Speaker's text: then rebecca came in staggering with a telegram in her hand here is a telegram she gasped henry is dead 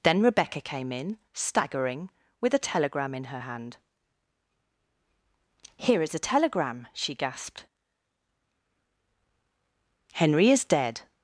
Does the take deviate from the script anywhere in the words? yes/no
no